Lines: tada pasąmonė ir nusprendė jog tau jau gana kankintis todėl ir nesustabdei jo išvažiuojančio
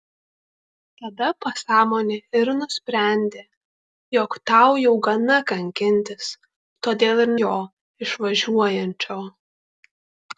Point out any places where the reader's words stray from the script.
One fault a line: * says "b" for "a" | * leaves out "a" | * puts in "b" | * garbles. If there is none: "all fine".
* leaves out "nesustabdei"